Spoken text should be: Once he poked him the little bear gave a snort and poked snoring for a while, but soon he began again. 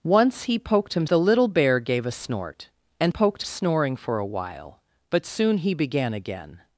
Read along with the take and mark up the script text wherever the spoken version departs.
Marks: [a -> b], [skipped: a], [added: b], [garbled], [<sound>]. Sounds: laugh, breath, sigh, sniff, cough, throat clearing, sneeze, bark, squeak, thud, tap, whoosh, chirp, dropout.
Once he poked him the little bear gave a snort and poked snoring for a while, but soon he began again.